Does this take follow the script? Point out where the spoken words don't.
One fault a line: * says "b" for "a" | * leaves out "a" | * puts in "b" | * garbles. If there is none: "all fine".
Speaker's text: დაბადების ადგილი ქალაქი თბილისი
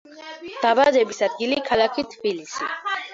all fine